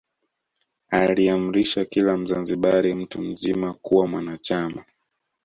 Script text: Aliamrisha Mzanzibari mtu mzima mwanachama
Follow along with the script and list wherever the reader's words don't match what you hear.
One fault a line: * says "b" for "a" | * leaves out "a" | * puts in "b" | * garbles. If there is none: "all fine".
* puts in "kila"
* puts in "kuwa"